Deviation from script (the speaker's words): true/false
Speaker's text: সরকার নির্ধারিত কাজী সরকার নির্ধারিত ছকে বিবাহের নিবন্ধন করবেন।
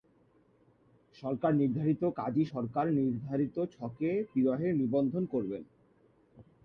false